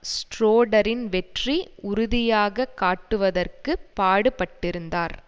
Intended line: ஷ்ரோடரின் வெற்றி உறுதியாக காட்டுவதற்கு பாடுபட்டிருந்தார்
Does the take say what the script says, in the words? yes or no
yes